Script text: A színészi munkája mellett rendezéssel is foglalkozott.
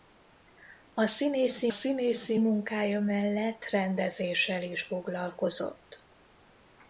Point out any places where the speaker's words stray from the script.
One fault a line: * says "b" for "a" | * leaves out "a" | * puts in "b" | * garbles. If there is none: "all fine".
* puts in "színészi"